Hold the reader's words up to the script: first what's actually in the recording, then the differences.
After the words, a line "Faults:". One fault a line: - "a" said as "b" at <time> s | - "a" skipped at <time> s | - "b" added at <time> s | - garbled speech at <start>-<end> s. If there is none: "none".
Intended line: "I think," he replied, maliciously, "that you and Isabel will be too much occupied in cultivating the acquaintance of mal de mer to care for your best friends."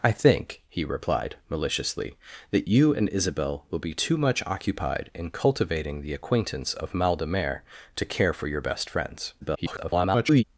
"I think," he replied, maliciously, "that you and Isabel will be too much occupied in cultivating the acquaintance of mal de mer to care for your best friends." [garbled]
Faults:
- garbled speech at 9.4-10.4 s